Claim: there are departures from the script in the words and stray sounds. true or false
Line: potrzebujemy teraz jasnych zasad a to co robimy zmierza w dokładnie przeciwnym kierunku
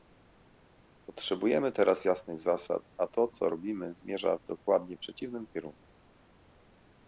false